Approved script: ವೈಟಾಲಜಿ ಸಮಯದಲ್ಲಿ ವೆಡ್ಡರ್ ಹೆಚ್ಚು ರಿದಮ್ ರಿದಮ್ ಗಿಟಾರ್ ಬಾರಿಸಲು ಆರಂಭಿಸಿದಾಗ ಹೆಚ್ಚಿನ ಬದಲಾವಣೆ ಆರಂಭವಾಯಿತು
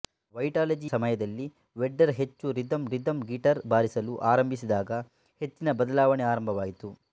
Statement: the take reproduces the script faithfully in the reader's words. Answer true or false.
true